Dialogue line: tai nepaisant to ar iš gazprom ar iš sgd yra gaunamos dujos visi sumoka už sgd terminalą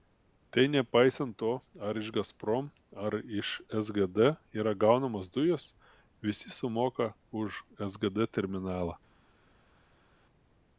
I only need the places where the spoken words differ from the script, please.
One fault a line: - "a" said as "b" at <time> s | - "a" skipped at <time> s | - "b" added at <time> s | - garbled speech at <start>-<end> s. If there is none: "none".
none